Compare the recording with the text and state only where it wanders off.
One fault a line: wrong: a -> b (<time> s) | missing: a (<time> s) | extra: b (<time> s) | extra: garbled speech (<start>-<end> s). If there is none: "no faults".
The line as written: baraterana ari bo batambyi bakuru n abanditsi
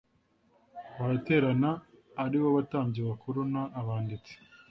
no faults